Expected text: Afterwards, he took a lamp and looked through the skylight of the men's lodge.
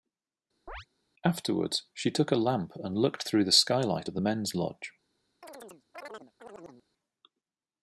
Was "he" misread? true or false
true